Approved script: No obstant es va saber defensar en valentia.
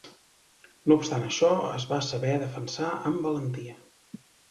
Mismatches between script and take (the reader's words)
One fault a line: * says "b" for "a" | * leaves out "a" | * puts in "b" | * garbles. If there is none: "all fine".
* puts in "això"
* says "amb" for "en"